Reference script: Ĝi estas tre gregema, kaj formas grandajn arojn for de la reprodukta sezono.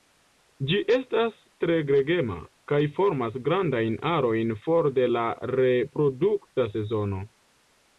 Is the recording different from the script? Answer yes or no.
no